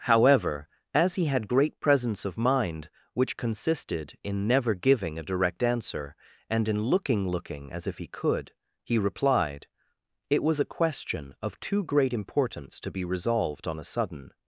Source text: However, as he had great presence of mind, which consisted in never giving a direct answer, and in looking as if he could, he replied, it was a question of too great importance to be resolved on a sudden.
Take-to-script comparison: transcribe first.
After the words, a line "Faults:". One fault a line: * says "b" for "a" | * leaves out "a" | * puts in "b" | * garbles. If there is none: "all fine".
However, as he had great presence of mind, which consisted in never giving a direct answer, and in looking looking as if he could, he replied, it was a question of too great importance to be resolved on a sudden.
Faults:
* puts in "looking"